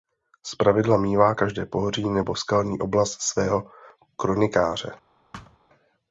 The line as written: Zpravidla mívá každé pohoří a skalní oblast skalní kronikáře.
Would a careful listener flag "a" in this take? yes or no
yes